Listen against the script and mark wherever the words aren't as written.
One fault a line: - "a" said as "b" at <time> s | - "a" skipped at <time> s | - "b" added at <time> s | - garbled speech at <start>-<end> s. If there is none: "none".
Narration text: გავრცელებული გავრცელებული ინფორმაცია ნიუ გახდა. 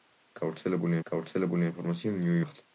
none